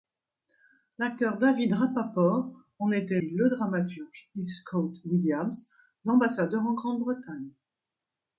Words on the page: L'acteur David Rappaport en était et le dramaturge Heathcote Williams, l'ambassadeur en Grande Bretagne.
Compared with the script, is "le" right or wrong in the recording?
right